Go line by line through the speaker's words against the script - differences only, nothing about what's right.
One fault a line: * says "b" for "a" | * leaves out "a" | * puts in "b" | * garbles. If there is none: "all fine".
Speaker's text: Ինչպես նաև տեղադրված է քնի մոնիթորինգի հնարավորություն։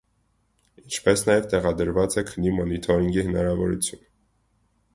all fine